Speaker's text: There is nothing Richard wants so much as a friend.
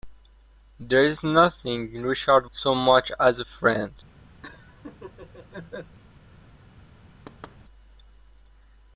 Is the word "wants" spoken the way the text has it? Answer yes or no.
no